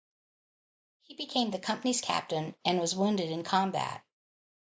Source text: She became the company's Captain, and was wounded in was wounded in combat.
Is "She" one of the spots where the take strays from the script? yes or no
yes